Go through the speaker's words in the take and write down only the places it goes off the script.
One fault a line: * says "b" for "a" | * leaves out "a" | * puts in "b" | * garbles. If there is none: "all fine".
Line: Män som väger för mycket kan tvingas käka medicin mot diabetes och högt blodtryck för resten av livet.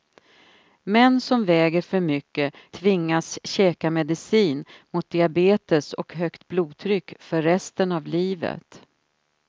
* leaves out "kan"